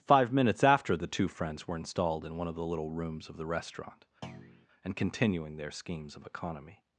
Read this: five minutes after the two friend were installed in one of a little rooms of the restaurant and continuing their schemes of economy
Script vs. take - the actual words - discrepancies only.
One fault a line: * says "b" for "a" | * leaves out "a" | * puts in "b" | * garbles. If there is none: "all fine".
* says "friends" for "friend"
* says "the" for "a"